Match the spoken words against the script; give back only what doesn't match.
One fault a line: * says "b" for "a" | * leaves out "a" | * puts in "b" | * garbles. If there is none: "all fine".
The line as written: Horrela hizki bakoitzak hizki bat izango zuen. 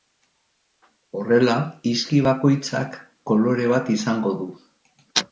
* says "kolore" for "hizki"
* says "du" for "zuen"